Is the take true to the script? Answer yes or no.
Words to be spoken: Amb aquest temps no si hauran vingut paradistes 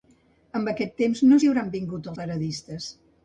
yes